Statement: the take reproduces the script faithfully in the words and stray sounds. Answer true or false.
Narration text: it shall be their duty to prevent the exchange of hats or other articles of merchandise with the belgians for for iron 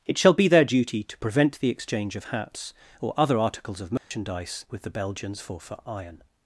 false